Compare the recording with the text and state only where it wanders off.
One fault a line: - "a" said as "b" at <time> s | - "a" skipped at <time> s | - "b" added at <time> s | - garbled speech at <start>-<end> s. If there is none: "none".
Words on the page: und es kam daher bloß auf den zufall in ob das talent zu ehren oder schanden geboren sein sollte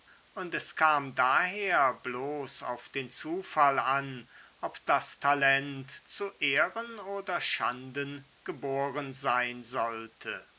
- "in" said as "an" at 3.8 s